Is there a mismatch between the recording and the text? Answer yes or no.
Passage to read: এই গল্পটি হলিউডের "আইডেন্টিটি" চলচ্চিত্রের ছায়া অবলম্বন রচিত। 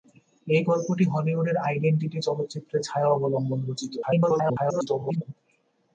yes